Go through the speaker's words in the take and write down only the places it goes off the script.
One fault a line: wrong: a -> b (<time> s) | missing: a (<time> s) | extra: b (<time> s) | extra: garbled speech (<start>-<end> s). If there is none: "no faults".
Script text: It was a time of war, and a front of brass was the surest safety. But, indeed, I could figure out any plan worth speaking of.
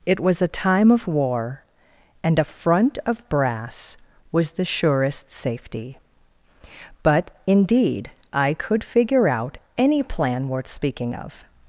no faults